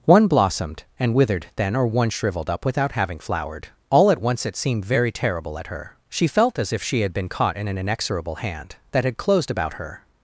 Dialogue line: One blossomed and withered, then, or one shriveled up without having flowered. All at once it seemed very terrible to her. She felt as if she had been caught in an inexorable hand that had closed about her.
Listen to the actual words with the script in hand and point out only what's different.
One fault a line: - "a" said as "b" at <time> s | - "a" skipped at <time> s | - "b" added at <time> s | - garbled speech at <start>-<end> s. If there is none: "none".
- "to" said as "at" at 5.6 s